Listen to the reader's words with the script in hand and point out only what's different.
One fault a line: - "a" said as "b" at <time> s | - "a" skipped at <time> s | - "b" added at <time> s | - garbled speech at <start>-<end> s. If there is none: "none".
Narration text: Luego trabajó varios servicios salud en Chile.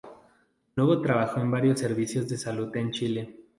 - "en" added at 1.4 s
- "de" added at 2.3 s